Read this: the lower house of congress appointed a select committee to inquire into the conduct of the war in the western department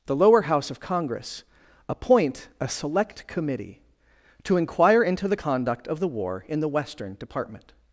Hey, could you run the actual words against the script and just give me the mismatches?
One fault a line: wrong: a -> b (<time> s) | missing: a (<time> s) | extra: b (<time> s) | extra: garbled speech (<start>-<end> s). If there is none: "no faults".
wrong: appointed -> appoint (1.9 s)